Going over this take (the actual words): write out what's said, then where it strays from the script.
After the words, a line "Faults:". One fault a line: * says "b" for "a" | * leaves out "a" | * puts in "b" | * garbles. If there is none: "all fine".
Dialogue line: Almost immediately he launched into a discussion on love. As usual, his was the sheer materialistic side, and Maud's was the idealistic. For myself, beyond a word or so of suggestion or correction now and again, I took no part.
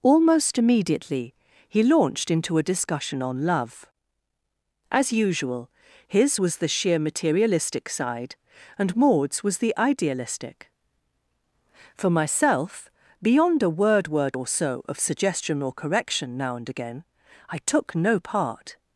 Almost immediately he launched into a discussion on love. As usual, his was the sheer materialistic side, and Maud's was the idealistic. For myself, beyond a word word or so of suggestion or correction now and again, I took no part.
Faults:
* puts in "word"